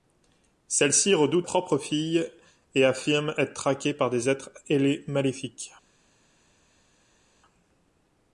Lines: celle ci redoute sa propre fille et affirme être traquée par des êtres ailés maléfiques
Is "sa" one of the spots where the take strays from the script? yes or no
yes